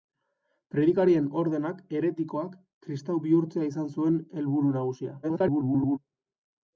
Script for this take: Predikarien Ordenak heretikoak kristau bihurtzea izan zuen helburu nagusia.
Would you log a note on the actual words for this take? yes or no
yes